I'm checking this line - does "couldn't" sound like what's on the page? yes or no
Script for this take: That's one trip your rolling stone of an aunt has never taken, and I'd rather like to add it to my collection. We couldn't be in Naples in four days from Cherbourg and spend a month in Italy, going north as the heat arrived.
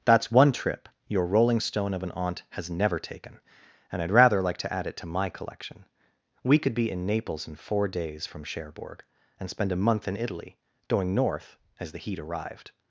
no